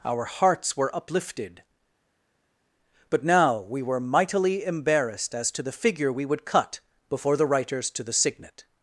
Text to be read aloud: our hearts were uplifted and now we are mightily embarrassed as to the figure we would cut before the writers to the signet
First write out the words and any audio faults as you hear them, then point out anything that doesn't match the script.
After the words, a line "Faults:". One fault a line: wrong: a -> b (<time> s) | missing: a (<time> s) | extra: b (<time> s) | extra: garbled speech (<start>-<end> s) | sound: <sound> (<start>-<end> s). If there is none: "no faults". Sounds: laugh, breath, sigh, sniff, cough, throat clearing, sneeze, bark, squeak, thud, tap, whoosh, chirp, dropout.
our hearts were uplifted but now we were mightily embarrassed as to the figure we would cut before the writers to the signet
Faults:
wrong: and -> but (3.1 s)
wrong: are -> were (3.8 s)